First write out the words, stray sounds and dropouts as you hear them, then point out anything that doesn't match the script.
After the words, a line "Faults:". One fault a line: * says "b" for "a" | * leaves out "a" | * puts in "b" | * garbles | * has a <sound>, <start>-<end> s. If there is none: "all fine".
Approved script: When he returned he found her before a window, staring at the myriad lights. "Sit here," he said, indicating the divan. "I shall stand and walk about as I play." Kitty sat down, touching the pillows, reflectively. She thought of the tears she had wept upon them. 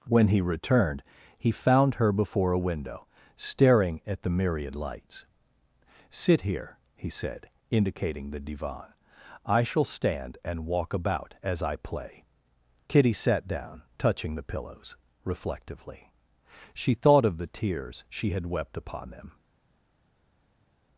When he returned he found her before a window, staring at the myriad lights. "Sit here," he said, indicating the divan. "I shall stand and walk about as I play." Kitty sat down, touching the pillows, reflectively. She thought of the tears she had wept upon them.
Faults:
all fine